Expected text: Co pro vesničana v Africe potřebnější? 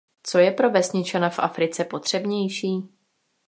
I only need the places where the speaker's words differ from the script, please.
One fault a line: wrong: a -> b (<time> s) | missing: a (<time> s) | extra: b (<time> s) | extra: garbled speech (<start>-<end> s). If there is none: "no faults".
extra: je (0.4 s)